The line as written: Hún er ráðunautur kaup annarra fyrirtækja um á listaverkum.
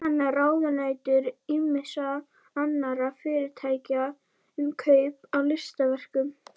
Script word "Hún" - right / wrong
wrong